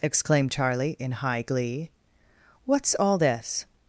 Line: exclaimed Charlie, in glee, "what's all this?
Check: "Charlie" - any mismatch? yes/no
no